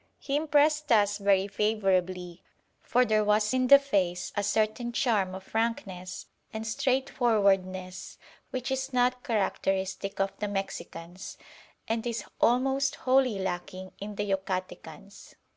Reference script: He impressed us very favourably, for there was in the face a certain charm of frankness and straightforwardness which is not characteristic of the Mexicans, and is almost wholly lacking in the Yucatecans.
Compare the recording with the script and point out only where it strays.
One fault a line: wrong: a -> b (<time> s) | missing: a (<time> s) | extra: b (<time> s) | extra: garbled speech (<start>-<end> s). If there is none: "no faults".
no faults